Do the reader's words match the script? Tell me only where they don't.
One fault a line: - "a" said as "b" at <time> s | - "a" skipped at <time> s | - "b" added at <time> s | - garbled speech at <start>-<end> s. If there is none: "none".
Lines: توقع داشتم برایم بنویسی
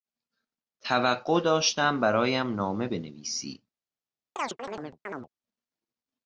- "نامه" added at 2.5 s